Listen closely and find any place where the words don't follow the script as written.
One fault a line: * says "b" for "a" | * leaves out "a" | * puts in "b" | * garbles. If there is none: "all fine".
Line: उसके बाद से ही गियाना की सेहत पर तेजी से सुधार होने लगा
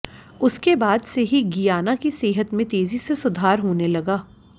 * says "में" for "पर"